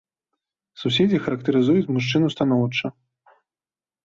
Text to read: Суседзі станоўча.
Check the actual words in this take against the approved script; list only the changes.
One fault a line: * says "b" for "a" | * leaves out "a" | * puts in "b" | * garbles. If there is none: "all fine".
* puts in "характарызуюць мужчыну"